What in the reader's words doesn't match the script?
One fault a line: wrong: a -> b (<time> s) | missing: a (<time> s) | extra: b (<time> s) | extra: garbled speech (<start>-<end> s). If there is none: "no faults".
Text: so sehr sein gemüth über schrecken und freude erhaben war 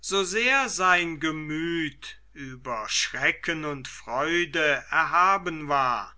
no faults